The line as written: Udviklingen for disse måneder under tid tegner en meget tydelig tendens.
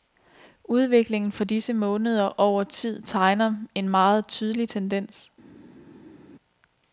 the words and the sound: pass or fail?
fail